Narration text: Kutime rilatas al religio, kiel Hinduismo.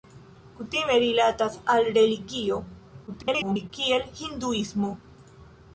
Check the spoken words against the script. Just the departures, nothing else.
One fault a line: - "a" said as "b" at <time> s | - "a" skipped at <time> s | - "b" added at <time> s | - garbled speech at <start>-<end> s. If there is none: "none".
- garbled speech at 3.1-3.7 s